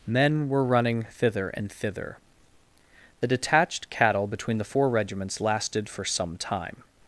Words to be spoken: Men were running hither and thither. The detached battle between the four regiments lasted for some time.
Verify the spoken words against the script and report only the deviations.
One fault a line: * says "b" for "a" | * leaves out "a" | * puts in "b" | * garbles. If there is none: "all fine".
* says "thither" for "hither"
* says "cattle" for "battle"